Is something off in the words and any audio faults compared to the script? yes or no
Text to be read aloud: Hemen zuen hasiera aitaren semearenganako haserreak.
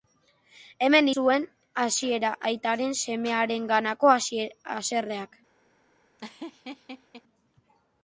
yes